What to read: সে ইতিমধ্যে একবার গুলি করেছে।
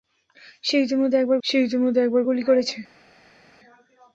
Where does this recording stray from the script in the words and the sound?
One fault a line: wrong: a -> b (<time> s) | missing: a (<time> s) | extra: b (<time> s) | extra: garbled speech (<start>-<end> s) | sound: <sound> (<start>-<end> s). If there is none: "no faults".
extra: সে ইতিমধ্যে একবার (1.4 s)